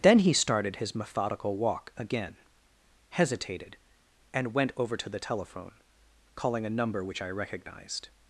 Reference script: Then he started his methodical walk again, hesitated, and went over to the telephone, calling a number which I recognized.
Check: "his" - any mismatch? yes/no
no